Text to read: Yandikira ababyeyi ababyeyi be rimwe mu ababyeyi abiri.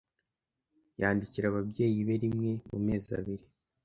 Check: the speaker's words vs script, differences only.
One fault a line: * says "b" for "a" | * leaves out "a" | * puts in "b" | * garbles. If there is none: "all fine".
* leaves out "ababyeyi"
* says "mezi" for "ababyeyi"